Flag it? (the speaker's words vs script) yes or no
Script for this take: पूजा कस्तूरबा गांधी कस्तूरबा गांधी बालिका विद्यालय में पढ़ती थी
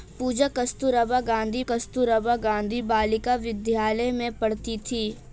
no